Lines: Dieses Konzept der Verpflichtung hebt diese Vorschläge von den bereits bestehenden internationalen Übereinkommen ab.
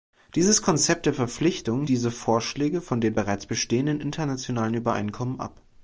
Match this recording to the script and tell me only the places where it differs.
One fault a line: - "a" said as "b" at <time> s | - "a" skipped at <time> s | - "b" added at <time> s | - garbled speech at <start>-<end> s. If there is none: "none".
- "hebt" skipped at 1.9 s